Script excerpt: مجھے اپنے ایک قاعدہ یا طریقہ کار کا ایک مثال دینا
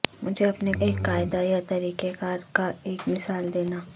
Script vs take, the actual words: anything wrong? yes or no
no